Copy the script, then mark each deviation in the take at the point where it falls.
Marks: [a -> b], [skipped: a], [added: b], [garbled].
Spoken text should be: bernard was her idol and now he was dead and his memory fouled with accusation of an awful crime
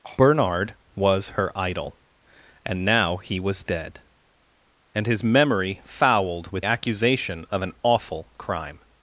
bernard was her idol and now he was dead and his memory fouled with accusation of an awful crime